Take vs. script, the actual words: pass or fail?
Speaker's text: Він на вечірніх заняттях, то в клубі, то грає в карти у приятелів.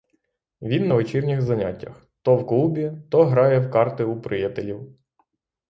pass